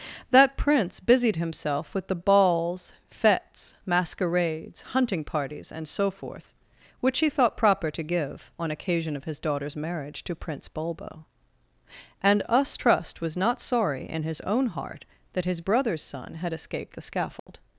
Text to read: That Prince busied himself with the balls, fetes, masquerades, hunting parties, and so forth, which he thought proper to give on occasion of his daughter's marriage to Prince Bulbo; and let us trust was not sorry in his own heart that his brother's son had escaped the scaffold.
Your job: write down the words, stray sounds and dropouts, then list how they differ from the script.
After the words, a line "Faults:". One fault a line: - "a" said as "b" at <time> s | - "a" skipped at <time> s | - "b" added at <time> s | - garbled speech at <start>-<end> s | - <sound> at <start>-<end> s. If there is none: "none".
That Prince busied himself with the balls, fetes, masquerades, hunting parties, and so forth, which he thought proper to give on occasion of his daughter's marriage to Prince Bulbo; and us trust was not sorry in his own heart that his brother's son had escaped the scaffold.
Faults:
- "let" skipped at 12.4 s
- dropout at 17.4-17.5 s